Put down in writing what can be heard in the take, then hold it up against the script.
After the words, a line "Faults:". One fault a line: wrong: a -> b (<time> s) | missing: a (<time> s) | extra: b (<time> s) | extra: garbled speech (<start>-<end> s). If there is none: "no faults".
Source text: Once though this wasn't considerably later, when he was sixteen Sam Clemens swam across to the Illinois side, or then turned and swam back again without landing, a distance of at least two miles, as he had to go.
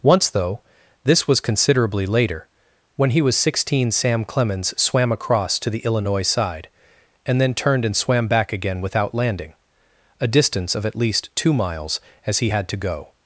Once though this was considerably later, when he was sixteen Sam Clemens swam across to the Illinois side, and then turned and swam back again without landing, a distance of at least two miles, as he had to go.
Faults:
wrong: wasn't -> was (1.3 s)
wrong: or -> and (7.2 s)